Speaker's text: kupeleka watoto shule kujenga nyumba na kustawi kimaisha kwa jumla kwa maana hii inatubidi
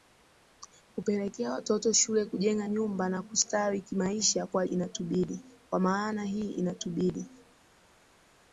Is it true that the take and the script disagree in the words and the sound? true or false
true